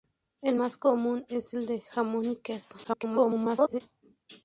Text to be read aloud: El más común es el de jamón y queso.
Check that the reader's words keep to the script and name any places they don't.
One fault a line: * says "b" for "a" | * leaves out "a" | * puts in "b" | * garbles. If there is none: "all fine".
* garbles